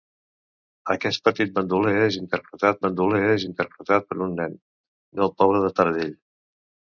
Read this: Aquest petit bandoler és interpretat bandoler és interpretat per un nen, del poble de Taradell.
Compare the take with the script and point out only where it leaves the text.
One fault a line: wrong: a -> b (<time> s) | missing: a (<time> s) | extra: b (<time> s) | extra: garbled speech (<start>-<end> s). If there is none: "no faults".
no faults